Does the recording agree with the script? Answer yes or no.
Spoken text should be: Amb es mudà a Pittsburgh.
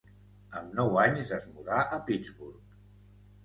no